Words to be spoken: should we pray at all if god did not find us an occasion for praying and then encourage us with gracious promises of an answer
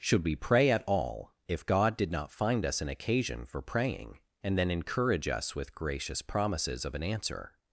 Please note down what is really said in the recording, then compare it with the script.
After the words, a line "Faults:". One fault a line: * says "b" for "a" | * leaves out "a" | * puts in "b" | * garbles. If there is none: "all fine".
should we pray at all if god did not find us an occasion for praying and then encourage us with gracious promises of an answer
Faults:
all fine